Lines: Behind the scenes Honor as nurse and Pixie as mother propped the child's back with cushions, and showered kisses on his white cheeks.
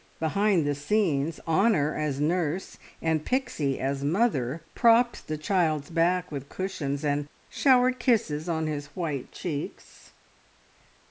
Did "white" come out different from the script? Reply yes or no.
no